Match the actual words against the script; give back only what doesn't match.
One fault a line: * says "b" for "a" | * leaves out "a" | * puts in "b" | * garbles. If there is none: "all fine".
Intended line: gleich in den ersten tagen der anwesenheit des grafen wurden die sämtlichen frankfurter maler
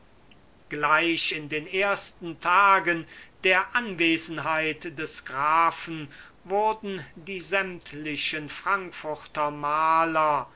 all fine